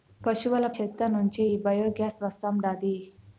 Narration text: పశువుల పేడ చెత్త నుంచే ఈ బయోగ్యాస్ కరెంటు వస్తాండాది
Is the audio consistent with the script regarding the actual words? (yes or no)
no